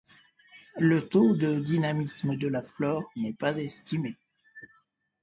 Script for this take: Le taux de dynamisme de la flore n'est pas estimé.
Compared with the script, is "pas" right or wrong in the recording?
right